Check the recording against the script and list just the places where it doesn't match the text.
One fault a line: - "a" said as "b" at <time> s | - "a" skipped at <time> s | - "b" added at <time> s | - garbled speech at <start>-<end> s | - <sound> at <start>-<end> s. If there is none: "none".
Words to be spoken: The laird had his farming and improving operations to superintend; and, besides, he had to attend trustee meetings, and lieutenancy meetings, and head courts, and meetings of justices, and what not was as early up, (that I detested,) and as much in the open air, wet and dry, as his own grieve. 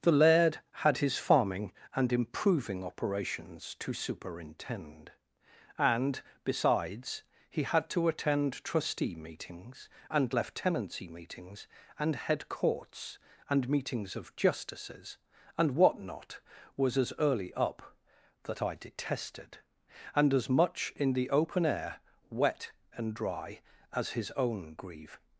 none